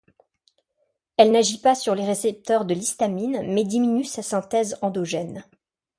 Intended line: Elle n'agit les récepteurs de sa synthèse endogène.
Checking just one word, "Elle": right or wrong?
right